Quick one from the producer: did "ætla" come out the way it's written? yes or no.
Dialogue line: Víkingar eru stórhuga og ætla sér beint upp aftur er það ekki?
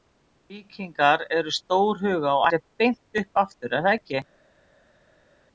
no